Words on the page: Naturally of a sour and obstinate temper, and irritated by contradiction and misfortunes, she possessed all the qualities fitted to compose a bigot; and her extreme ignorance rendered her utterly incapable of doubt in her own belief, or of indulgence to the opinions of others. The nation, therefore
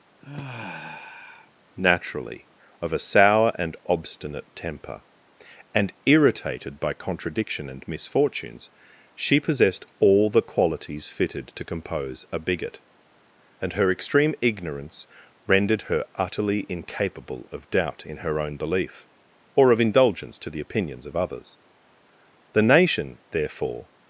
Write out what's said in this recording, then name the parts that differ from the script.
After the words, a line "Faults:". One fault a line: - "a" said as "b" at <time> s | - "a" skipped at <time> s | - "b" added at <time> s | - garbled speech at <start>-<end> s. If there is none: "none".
Naturally of a sour and obstinate temper, and irritated by contradiction and misfortunes, she possessed all the qualities fitted to compose a bigot; and her extreme ignorance rendered her utterly incapable of doubt in her own belief, or of indulgence to the opinions of others. The nation, therefore
Faults:
none